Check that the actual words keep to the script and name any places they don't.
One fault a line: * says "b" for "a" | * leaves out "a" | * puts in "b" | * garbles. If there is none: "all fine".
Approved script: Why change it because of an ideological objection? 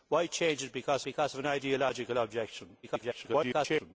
* puts in "because"
* garbles